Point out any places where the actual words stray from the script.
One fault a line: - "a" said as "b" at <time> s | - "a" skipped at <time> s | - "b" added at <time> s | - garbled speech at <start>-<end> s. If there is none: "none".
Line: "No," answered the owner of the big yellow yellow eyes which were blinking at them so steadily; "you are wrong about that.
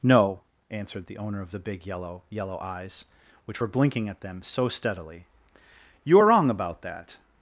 none